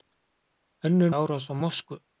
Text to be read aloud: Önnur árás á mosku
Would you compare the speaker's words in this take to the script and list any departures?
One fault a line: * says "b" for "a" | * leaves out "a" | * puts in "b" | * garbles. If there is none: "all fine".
all fine